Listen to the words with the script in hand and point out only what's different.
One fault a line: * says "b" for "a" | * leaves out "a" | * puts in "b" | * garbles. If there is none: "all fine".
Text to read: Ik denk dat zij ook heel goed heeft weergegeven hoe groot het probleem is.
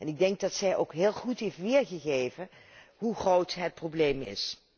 all fine